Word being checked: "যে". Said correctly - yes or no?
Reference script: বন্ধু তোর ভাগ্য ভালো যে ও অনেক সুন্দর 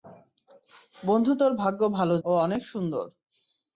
no